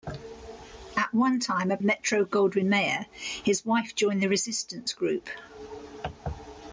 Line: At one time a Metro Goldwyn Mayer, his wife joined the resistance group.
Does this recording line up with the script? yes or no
yes